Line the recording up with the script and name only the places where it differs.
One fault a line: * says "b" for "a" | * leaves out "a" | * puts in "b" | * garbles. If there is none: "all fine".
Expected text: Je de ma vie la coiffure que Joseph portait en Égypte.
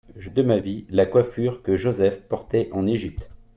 all fine